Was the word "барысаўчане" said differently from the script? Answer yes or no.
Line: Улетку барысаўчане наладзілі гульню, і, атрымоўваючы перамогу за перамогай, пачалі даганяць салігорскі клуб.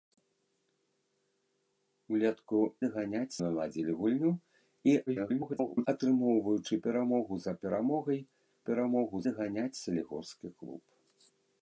yes